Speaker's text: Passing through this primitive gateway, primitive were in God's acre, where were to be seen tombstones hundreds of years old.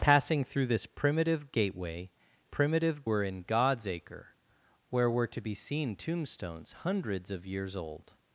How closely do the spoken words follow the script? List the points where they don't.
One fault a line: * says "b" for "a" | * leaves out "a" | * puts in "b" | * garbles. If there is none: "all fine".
all fine